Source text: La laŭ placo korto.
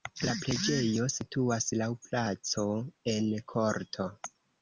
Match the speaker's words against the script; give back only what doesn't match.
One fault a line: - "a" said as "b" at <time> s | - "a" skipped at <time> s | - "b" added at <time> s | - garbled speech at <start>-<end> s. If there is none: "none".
- "preĝejo situas" added at 0.4 s
- "en" added at 3.2 s